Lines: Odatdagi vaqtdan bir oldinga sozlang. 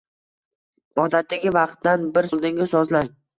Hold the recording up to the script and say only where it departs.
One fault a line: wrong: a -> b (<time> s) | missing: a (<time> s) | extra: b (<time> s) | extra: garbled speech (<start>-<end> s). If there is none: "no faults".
no faults